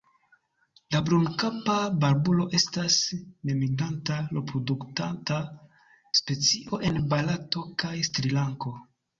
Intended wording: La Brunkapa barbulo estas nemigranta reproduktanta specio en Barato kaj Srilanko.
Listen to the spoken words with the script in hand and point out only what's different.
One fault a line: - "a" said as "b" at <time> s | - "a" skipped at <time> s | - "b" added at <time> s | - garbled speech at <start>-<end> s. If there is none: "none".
none